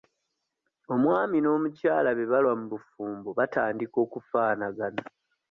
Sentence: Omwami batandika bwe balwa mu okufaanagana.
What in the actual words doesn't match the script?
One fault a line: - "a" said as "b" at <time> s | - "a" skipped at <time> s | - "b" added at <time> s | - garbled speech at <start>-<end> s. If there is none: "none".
- "batandika" said as "n'omukyala" at 1.4 s
- "bufumbo batandika" added at 2.7 s